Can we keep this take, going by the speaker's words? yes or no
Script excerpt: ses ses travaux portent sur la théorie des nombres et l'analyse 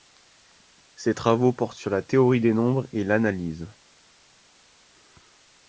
no